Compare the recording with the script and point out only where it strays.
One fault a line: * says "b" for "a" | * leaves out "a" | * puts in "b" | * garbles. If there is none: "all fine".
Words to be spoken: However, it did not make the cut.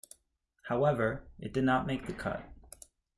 all fine